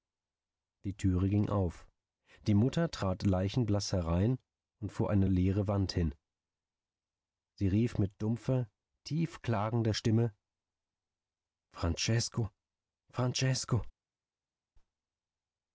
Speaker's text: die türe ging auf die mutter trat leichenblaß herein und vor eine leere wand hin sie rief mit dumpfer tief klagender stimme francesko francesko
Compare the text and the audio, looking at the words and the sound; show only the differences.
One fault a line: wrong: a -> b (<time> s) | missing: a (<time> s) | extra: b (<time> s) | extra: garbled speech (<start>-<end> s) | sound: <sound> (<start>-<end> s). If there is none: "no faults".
no faults